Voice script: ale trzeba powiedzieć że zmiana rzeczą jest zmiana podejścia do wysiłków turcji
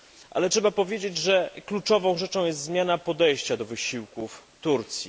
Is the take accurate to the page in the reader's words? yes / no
no